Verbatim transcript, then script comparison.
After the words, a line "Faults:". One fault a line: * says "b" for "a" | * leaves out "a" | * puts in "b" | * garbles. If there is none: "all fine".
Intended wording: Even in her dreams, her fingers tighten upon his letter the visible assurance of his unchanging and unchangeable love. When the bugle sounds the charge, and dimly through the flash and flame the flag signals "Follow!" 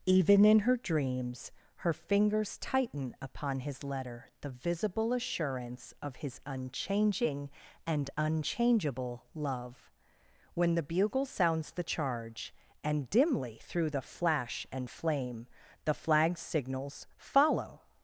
Even in her dreams, her fingers tighten upon his letter the visible assurance of his unchanging and unchangeable love. When the bugle sounds the charge, and dimly through the flash and flame the flag signals "Follow!"
Faults:
all fine